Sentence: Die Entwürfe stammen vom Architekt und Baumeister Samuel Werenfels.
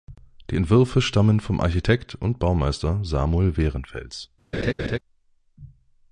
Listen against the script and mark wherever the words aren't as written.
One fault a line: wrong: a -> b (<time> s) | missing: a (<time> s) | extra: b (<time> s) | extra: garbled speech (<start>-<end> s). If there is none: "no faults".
no faults